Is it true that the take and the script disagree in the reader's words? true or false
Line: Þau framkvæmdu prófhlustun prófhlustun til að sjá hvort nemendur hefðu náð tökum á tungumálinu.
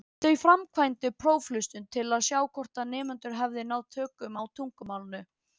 true